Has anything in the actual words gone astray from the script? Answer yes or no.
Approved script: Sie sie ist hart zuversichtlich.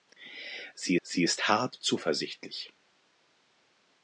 no